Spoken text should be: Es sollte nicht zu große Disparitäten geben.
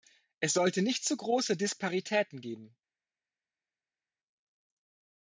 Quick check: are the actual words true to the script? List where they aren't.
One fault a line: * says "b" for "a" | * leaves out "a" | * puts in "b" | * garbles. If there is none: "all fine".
all fine